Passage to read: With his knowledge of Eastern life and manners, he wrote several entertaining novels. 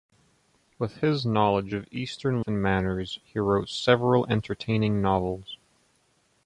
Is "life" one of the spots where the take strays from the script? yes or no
yes